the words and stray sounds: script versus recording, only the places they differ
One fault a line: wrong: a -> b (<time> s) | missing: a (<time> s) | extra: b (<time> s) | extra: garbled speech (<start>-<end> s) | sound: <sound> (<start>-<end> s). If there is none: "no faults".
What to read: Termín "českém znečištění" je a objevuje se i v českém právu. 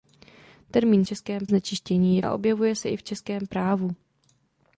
no faults